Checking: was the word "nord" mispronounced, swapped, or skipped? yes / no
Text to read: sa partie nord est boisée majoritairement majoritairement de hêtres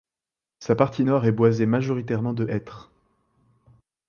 no